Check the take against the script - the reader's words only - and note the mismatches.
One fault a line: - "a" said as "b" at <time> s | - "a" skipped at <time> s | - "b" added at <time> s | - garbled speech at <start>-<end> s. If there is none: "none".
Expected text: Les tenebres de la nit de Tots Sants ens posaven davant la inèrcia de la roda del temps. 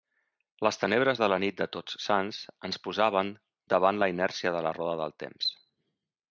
none